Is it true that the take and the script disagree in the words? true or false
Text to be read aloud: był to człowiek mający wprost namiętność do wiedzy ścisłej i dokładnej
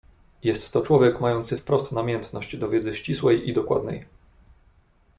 true